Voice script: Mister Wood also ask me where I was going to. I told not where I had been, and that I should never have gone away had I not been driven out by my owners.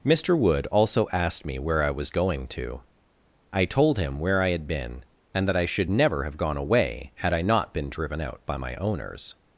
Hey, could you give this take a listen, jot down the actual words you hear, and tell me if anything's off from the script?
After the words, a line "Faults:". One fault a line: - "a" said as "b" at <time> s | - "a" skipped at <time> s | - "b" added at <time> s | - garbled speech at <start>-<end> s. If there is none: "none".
Mister Wood also asked me where I was going to. I told him where I had been, and that I should never have gone away had I not been driven out by my owners.
Faults:
- "ask" said as "asked" at 1.1 s
- "not" said as "him" at 4.0 s